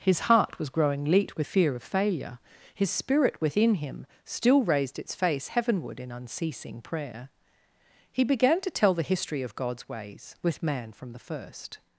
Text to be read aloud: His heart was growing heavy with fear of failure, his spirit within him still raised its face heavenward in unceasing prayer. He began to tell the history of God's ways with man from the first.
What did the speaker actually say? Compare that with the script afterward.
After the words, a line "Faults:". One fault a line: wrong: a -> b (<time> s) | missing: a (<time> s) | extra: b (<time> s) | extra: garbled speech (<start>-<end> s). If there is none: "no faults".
His heart was growing leet with fear of failure, his spirit within him still raised its face heavenward in unceasing prayer. He began to tell the history of God's ways with man from the first.
Faults:
wrong: heavy -> leet (1.1 s)